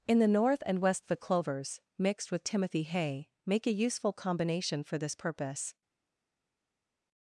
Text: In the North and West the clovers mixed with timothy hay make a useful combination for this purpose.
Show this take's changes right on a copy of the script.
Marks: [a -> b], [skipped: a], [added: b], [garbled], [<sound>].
In the North and West the clovers mixed with timothy hay make a useful combination for this purpose.